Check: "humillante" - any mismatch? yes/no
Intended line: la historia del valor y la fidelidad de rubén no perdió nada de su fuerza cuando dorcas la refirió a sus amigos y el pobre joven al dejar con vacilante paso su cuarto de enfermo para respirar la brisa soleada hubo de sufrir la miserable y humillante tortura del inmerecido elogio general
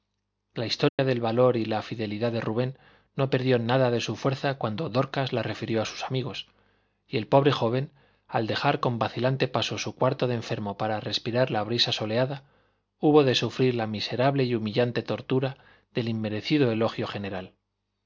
no